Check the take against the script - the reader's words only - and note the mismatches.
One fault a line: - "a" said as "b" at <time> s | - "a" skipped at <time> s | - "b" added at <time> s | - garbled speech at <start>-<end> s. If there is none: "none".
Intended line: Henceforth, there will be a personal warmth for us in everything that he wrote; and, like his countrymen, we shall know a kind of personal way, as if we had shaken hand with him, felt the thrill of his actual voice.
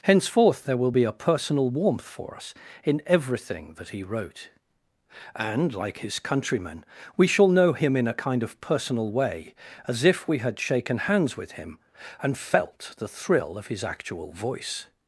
- "him in" added at 7.7 s
- "hand" said as "hands" at 11.0 s
- "and" added at 12.2 s